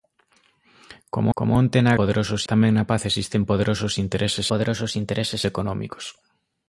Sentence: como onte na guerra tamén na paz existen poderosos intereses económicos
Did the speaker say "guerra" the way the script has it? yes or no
no